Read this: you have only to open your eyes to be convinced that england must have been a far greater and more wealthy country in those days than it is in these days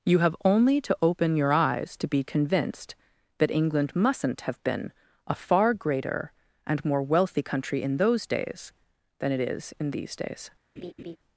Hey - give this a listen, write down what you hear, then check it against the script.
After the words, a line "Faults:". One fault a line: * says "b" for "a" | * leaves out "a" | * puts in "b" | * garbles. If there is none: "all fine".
you have only to open your eyes to be convinced that england mustn't have been a far greater and more wealthy country in those days than it is in these days
Faults:
* says "mustn't" for "must"